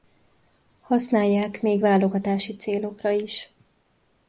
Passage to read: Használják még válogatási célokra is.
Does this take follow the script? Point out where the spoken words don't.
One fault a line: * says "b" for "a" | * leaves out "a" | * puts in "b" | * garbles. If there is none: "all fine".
all fine